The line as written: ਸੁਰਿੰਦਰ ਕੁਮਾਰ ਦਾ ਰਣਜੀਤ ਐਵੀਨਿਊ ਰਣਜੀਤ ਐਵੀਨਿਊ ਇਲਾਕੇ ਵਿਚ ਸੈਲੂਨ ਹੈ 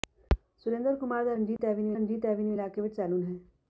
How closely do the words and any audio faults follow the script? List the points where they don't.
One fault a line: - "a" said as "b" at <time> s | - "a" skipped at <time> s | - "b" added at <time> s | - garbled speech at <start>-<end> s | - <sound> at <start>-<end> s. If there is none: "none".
- dropout at 1.6-1.6 s